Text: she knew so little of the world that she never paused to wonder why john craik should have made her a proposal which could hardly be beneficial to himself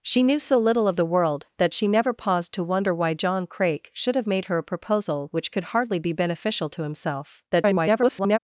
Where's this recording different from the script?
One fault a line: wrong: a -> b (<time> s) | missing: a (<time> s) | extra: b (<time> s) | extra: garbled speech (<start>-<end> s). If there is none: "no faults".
extra: garbled speech (7.5-8.4 s)